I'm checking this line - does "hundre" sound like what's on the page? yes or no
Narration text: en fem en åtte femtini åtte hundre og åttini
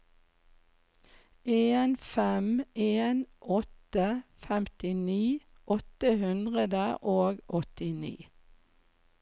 yes